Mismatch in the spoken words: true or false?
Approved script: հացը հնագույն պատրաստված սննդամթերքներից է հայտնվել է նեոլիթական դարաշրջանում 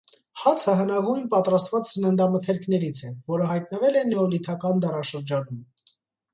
true